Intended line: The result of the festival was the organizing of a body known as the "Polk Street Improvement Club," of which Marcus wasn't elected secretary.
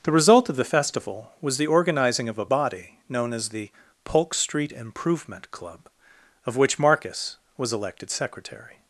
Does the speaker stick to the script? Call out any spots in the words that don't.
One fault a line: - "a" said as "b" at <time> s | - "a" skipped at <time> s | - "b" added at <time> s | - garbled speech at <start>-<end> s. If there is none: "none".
- "wasn't" said as "was" at 7.6 s